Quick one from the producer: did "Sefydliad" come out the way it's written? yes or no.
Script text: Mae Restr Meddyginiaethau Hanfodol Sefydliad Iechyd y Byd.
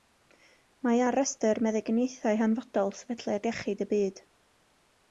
yes